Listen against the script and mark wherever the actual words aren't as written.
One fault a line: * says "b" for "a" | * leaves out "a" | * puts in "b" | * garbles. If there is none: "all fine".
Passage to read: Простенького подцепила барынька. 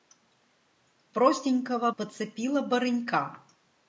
all fine